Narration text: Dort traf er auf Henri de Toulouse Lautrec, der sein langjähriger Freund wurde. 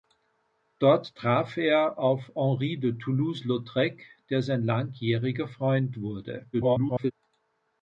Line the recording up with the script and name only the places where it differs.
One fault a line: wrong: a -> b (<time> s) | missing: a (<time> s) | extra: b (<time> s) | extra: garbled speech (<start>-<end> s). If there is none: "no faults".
extra: garbled speech (6.5-7.1 s)